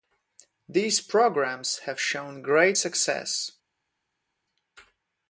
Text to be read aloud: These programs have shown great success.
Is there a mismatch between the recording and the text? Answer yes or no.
no